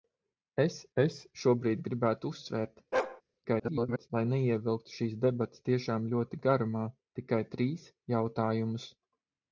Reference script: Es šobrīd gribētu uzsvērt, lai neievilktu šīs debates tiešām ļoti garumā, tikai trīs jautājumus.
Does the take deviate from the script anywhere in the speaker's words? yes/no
yes